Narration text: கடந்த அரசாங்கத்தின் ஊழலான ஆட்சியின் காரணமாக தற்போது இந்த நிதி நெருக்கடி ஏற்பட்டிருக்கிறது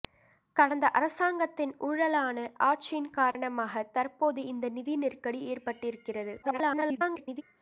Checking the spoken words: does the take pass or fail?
fail